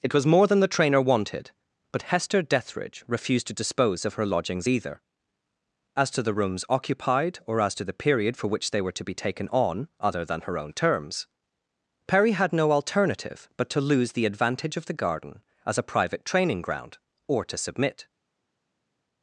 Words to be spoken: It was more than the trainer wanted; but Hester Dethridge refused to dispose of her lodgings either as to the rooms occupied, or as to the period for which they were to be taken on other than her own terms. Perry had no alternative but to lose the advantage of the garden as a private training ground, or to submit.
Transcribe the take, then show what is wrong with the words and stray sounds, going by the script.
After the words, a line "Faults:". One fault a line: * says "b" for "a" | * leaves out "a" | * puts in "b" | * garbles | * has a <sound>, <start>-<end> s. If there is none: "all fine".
It was more than the trainer wanted; but Hester Dethridge refused to dispose of her lodgings either as to the rooms occupied, or as to the period for which they were to be taken on other than her own terms. Perry had no alternative but to lose the advantage of the garden as a private training ground, or to submit.
Faults:
all fine